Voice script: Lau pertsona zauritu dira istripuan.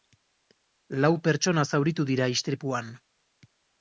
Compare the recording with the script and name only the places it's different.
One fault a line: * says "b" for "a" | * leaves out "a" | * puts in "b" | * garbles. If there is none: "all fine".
all fine